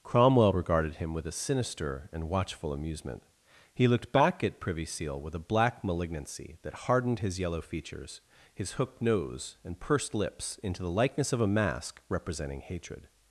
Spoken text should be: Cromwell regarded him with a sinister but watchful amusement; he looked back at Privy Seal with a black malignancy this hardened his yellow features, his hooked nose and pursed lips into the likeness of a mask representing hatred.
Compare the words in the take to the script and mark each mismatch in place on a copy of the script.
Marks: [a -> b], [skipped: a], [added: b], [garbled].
Cromwell regarded him with a sinister [but -> and] watchful amusement; he looked back at Privy Seal with a black malignancy [this -> that] hardened his yellow features, his hooked nose and pursed lips into the likeness of a mask representing hatred.